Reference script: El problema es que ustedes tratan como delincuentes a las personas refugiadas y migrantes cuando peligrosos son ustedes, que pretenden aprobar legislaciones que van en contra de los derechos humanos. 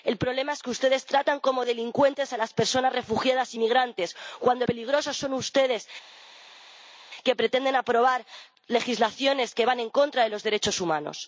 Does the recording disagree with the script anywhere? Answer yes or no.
no